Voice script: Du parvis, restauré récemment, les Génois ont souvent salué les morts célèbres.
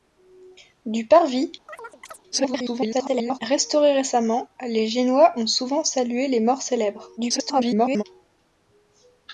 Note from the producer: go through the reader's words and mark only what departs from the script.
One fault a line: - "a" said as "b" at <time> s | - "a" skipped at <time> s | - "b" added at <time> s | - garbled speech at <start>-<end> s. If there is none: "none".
- garbled speech at 2.3-3.4 s
- garbled speech at 7.2-8.0 s